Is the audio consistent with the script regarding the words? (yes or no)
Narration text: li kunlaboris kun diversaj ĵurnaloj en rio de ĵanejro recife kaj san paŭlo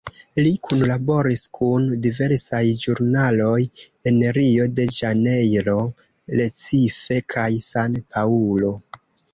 yes